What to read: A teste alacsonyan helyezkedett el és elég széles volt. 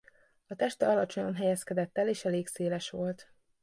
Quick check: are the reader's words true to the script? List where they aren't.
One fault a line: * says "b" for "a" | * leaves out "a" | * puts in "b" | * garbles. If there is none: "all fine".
all fine